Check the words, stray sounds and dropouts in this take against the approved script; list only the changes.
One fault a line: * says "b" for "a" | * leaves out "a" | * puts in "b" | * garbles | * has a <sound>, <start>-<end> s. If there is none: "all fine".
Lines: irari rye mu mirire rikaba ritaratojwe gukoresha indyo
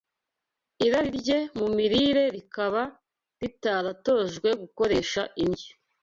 all fine